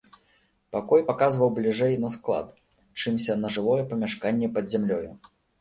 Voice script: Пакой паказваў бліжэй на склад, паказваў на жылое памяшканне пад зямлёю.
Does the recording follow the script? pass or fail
fail